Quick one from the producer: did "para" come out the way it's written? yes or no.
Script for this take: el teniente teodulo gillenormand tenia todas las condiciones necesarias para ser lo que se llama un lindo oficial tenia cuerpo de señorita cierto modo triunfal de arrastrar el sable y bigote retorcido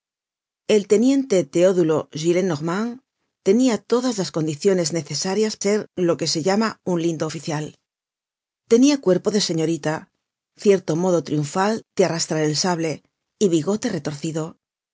no